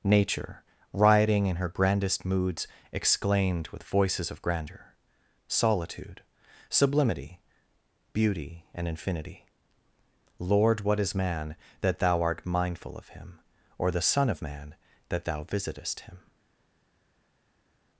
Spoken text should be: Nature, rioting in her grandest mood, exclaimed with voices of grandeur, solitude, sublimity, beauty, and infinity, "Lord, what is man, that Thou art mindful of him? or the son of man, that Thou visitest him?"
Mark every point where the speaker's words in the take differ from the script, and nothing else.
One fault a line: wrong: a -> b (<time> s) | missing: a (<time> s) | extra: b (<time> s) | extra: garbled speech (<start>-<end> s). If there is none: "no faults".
wrong: mood -> moods (2.2 s)